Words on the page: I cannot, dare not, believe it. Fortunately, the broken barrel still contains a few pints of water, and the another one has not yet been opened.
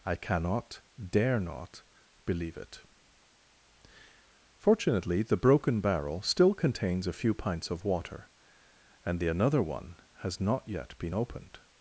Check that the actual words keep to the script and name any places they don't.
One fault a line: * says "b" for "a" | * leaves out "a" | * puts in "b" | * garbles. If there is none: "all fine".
all fine